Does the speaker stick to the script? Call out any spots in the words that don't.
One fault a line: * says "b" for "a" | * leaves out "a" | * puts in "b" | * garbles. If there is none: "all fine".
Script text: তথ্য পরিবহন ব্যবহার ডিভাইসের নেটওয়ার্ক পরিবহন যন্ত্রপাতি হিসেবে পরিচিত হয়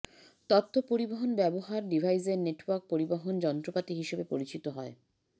all fine